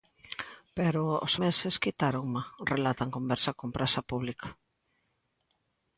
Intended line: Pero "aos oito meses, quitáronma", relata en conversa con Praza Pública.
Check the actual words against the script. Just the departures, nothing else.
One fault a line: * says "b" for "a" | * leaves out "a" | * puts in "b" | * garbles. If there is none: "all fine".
* leaves out "oito"